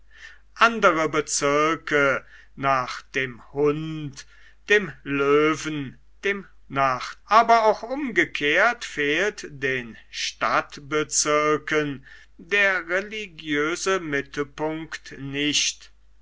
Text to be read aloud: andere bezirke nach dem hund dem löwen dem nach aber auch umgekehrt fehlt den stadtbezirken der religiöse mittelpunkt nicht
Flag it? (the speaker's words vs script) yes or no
no